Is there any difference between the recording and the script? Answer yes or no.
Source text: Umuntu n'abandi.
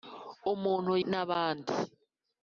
no